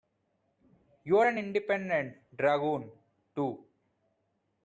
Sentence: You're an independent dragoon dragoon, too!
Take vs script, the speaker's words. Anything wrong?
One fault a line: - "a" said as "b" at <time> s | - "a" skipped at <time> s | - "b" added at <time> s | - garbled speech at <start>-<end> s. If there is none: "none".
- "dragoon" skipped at 2.9 s